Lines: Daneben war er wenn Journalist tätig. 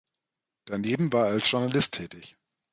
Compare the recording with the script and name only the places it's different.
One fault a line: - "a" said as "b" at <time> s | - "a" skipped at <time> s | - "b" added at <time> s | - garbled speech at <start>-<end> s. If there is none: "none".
- "wenn" said as "als" at 1.3 s